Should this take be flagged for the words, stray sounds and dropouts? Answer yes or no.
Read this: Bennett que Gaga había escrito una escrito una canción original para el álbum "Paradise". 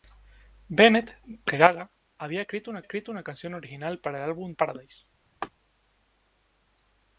yes